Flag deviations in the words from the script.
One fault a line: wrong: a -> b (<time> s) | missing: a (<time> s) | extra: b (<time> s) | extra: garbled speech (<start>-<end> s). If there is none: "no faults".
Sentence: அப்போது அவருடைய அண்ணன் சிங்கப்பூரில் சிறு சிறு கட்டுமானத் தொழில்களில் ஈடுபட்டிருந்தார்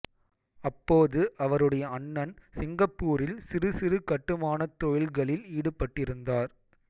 no faults